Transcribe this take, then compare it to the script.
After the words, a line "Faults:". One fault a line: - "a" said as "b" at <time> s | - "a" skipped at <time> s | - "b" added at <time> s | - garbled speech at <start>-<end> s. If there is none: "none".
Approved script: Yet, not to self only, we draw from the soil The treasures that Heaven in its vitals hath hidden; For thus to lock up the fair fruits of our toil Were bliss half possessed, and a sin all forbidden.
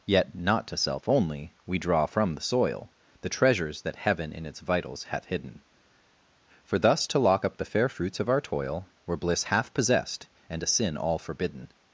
Yet, not to self only, we draw from the soil The treasures that Heaven in its vitals hath hidden; For thus to lock up the fair fruits of our toil Were bliss half possessed, and a sin all forbidden.
Faults:
none